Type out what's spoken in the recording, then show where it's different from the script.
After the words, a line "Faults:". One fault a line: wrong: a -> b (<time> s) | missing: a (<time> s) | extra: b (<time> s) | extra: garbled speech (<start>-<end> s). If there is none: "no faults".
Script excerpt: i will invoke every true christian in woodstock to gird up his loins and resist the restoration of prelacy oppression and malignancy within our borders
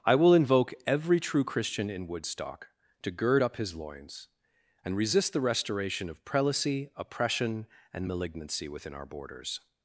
i will invoke every true christian in woodstock to gird up his loins and resist the restoration of prelacy oppression and malignancy within our borders
Faults:
no faults